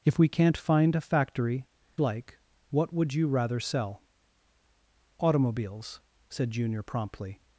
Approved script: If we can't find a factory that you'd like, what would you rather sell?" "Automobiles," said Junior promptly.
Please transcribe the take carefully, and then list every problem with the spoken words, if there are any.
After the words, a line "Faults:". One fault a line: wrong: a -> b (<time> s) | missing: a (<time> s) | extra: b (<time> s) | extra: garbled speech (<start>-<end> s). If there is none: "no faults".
If we can't find a factory like, what would you rather sell?" "Automobiles," said Junior promptly.
Faults:
missing: that you'd (1.6 s)